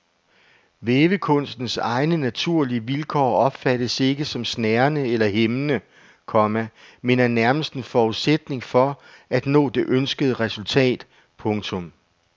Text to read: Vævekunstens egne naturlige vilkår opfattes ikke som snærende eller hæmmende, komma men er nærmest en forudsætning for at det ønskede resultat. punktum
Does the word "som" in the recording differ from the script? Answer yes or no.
no